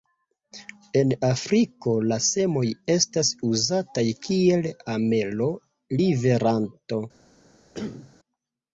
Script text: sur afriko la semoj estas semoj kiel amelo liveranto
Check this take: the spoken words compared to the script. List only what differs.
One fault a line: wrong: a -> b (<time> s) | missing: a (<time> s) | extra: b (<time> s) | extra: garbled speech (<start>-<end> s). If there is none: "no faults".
wrong: sur -> en (1.0 s)
wrong: semoj -> uzataj (3.5 s)